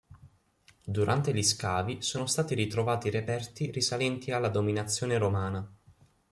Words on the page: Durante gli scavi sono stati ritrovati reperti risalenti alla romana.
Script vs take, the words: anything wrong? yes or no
yes